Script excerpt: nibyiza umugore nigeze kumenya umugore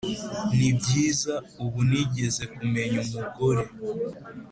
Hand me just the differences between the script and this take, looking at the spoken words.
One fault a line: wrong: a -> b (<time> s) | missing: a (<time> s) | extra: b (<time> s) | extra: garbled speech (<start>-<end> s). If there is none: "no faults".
wrong: umugore -> ubu (1.6 s)